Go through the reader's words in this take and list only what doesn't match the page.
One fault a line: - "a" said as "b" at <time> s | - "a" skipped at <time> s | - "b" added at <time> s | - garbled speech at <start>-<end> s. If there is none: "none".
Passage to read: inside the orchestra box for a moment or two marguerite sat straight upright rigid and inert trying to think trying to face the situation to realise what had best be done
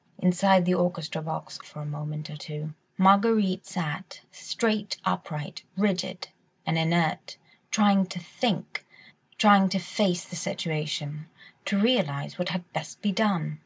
none